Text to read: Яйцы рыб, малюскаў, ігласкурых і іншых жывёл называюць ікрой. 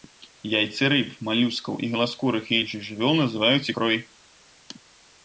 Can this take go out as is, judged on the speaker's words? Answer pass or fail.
pass